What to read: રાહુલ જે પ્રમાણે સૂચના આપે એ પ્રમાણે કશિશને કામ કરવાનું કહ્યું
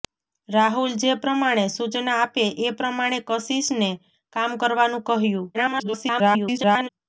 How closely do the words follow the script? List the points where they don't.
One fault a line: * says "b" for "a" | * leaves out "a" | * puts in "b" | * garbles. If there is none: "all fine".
* garbles